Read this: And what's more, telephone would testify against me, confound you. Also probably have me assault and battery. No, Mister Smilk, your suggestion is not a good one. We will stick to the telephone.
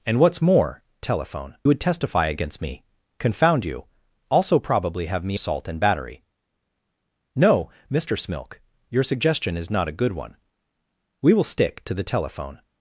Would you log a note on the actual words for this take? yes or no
no